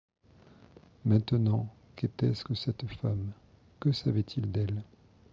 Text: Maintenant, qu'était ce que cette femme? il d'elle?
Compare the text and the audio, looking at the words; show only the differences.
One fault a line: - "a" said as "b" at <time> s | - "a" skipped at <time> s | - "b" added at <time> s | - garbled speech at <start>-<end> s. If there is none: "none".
- "que savait" added at 3.8 s